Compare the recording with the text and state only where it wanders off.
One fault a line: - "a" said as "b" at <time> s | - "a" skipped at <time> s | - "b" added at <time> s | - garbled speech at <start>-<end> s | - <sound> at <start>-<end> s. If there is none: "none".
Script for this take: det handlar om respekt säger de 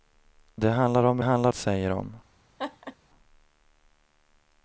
- "respekt" said as "handlar" at 1.2 s
- laugh at 2.6-3.0 s